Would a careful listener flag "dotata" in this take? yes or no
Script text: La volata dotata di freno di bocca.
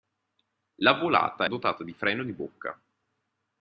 no